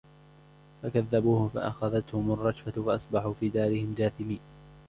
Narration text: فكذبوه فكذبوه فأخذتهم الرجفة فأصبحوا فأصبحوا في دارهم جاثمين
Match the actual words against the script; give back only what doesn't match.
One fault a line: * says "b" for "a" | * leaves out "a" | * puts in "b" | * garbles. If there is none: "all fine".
* leaves out "فكذبوه"
* leaves out "فأصبحوا"